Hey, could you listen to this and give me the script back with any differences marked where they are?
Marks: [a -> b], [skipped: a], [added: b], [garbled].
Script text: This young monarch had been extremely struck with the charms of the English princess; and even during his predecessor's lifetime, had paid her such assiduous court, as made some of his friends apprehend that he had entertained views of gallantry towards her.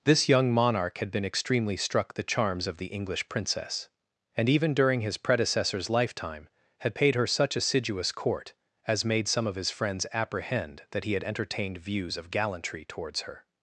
This young monarch had been extremely struck [skipped: with] the charms of the English princess; and even during his predecessor's lifetime, had paid her such assiduous court, as made some of his friends apprehend that he had entertained views of gallantry towards her.